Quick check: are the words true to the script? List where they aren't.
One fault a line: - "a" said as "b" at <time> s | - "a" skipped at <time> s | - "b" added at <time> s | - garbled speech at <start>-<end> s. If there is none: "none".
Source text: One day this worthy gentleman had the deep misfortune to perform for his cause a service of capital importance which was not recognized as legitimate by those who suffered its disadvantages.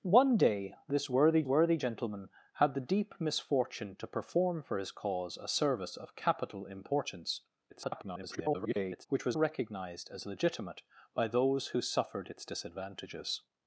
- "worthy" added at 1.5 s
- garbled speech at 7.7-9.1 s
- "not" skipped at 9.4 s